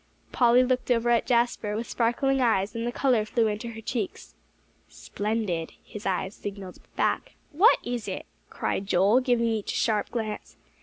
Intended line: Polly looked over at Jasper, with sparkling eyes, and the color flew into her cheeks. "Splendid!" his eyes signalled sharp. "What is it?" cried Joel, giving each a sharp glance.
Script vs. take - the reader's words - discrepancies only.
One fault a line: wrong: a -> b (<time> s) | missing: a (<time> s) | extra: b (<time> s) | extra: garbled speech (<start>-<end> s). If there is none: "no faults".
wrong: sharp -> back (6.9 s)